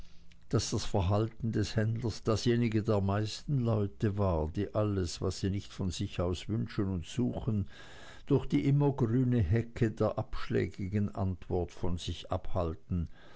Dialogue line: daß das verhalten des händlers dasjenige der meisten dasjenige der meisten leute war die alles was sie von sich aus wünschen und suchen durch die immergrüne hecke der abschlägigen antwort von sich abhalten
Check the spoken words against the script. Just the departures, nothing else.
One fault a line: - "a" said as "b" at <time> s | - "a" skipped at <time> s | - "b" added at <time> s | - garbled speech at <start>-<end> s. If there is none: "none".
- "dasjenige der meisten" skipped at 3.6 s
- "nicht" added at 5.5 s